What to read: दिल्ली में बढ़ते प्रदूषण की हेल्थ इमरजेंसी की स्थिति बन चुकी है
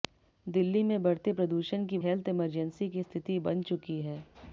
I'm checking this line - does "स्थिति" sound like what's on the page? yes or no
yes